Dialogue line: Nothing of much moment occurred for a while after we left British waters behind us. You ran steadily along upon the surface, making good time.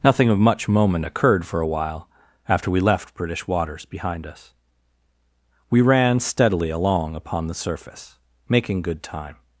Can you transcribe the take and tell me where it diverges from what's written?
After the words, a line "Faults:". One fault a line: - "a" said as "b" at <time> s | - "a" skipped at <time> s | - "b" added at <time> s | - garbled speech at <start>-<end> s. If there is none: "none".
Nothing of much moment occurred for a while after we left British waters behind us. We ran steadily along upon the surface, making good time.
Faults:
- "You" said as "We" at 5.7 s